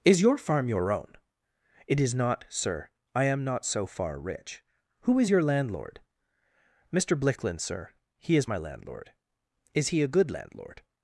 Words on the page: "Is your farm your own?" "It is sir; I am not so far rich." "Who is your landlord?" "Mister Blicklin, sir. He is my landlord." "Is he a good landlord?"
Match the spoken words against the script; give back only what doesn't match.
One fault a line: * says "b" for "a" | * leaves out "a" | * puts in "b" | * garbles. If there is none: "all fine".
* puts in "not"